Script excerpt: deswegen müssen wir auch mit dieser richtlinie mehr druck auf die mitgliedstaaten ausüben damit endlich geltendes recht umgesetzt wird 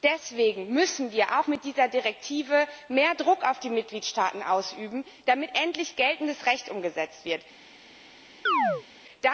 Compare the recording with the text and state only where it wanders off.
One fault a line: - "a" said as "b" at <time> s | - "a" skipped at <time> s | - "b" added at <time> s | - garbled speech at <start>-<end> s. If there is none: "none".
none